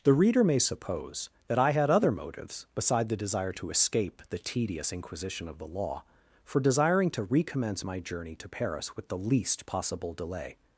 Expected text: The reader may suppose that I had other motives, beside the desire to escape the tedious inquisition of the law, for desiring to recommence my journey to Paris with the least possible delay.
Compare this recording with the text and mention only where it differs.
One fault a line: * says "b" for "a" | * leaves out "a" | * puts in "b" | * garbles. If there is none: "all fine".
all fine